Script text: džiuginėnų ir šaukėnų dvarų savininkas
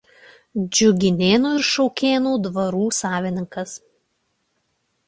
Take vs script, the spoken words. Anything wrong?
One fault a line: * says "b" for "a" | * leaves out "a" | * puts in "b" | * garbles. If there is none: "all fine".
all fine